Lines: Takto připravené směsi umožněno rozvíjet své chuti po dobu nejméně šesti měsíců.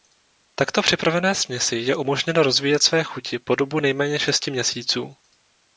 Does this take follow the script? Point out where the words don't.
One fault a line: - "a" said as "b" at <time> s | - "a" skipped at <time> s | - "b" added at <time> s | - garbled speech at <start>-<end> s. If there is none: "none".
- "je" added at 1.8 s